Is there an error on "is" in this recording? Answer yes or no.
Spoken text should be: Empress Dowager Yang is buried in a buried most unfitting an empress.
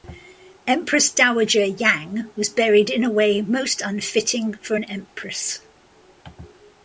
yes